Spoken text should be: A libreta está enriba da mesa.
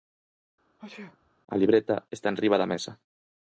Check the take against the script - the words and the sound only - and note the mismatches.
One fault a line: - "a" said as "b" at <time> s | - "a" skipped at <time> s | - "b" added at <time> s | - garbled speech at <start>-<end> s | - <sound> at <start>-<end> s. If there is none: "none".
- sneeze at 0.8-1.3 s